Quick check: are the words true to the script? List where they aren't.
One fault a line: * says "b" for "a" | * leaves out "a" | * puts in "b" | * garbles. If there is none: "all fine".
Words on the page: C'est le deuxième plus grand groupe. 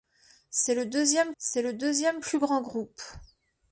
* puts in "c'est le deuxième"